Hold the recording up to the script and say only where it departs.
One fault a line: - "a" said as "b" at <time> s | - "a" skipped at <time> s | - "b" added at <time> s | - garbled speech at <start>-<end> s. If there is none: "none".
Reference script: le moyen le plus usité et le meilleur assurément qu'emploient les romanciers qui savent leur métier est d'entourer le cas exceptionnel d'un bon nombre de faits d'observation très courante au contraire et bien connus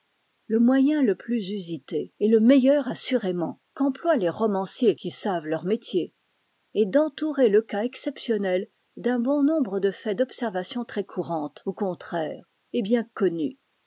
none